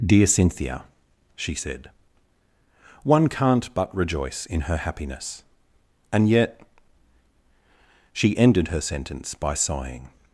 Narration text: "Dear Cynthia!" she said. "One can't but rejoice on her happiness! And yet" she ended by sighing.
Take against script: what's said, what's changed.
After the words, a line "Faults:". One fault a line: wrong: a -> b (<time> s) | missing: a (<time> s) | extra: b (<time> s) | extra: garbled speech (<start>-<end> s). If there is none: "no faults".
"Dear Cynthia!" she said. "One can't but rejoice in her happiness! And yet" she ended her sentence by sighing.
Faults:
wrong: on -> in (4.5 s)
extra: her sentence (8.7 s)